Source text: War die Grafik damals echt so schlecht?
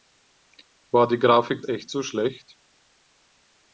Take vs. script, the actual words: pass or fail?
fail